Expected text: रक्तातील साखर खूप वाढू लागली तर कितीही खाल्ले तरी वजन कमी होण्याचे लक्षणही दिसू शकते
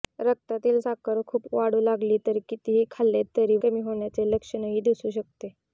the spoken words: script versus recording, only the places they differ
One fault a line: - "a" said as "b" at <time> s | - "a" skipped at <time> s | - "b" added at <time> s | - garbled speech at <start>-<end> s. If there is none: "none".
- "वजन" skipped at 3.6 s